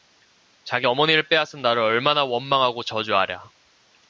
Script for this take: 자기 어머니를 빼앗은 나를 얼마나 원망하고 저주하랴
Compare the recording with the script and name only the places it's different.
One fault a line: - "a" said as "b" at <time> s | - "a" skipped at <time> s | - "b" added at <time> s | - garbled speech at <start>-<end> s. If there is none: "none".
none